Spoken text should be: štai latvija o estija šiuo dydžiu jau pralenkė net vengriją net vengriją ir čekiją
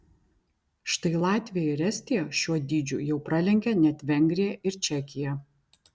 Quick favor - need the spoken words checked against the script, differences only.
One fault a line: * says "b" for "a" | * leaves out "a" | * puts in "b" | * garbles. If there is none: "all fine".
* says "ir" for "o"
* leaves out "net vengriją"